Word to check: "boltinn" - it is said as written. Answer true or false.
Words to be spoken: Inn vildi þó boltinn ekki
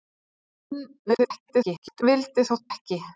false